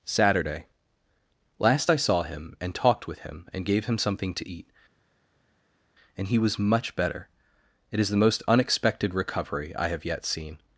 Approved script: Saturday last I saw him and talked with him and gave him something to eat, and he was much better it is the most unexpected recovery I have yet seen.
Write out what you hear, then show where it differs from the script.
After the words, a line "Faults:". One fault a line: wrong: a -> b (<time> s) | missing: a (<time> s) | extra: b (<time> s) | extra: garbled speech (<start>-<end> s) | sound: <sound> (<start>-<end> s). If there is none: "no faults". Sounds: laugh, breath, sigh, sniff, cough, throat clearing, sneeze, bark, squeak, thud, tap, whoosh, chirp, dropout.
Saturday last I saw him and talked with him and gave him something to eat, and he was much better it is the most unexpected recovery I have yet seen.
Faults:
no faults